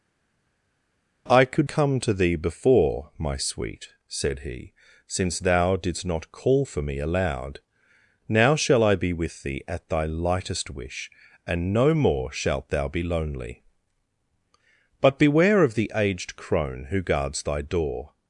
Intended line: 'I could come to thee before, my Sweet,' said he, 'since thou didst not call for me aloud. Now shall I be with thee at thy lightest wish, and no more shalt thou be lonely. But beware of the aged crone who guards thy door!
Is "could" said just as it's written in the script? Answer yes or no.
yes